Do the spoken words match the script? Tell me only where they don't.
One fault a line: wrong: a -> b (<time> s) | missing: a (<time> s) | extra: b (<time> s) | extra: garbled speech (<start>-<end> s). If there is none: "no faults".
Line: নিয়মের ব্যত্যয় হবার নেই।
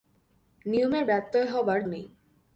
no faults